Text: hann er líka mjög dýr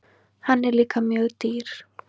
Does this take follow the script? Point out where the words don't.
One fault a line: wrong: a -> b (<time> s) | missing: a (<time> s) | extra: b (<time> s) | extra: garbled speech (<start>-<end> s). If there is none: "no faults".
no faults